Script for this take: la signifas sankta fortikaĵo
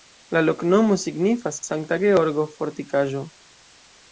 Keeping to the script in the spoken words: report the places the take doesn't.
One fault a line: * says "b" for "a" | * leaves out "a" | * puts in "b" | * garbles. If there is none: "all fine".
* puts in "loknomo"
* puts in "georgo"